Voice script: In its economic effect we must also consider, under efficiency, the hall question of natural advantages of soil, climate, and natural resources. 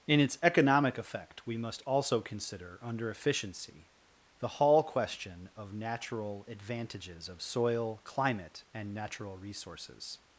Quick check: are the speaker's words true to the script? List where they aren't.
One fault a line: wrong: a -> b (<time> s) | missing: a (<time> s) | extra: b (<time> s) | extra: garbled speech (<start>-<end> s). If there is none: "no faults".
no faults